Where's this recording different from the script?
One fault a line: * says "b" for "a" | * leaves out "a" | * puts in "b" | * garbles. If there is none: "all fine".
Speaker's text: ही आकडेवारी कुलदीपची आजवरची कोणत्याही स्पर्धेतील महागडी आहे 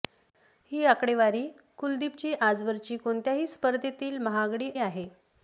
all fine